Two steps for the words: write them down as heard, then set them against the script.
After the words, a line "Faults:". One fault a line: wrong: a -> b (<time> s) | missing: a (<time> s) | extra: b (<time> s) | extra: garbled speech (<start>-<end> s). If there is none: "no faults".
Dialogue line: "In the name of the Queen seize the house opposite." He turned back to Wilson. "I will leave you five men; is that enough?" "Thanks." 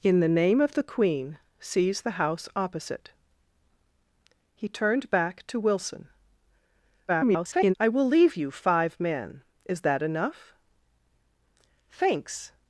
"In the name of the Queen seize the house opposite." He turned back to Wilson. [garbled] "I will leave you five men; is that enough?" "Thanks."
Faults:
extra: garbled speech (7.1-7.7 s)